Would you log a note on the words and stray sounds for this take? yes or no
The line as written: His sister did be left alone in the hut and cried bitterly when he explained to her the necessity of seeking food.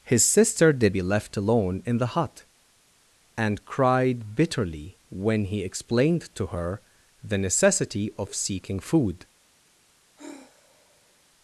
yes